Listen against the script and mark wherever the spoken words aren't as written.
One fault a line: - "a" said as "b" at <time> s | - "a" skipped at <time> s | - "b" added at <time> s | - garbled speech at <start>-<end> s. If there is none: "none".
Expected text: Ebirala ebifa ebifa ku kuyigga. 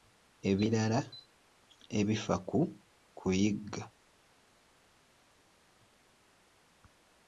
- "ebifa" skipped at 2.4 s